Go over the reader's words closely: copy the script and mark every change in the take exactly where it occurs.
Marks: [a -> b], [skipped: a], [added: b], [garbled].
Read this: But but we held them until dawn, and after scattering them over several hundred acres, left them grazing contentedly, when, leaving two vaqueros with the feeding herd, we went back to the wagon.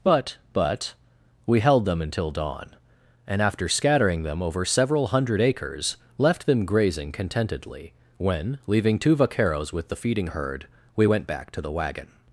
But but we held them until dawn, and after scattering them over several hundred acres, left them grazing contentedly, when, leaving two vaqueros with the feeding herd, we went back to the wagon.